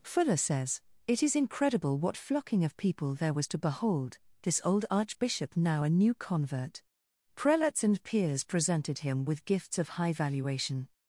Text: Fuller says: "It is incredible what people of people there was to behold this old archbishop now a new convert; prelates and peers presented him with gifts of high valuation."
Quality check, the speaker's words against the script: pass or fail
fail